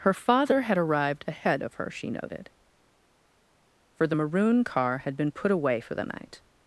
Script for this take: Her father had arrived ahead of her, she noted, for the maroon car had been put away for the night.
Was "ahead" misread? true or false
false